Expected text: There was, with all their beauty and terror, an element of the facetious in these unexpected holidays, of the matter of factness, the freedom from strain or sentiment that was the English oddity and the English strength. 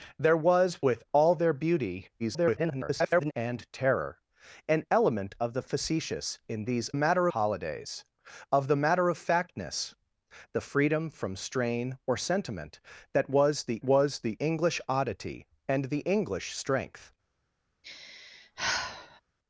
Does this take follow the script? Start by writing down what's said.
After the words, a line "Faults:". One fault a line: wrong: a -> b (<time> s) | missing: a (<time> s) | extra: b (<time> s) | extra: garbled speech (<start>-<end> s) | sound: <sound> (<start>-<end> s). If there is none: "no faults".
There was, with all their beauty [garbled] and terror, an element of the facetious in these matter holidays, of the matter of factness, the freedom from strain or sentiment that was the was the English oddity and the English strength.
Faults:
extra: garbled speech (2.2-3.3 s)
wrong: unexpected -> matter (6.9 s)
extra: was the (13.8 s)
sound: sigh (17.8-19.2 s)